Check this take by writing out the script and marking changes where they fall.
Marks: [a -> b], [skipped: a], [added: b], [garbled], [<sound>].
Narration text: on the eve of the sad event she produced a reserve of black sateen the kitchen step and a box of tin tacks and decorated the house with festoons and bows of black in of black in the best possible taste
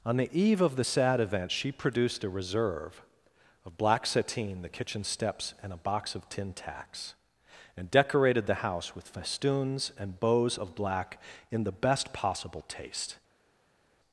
on the eve of the sad event she produced a reserve of black sateen the kitchen [step -> steps] and a box of tin tacks and decorated the house with festoons and bows of black in [skipped: of black in] the best possible taste